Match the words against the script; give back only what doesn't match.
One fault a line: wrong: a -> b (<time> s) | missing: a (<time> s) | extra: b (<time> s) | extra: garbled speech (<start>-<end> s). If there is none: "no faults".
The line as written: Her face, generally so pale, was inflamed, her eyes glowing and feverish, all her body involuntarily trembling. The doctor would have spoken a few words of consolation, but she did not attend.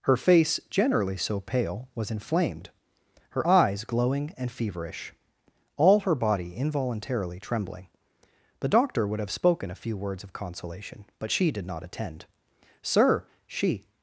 extra: Sir she (12.8 s)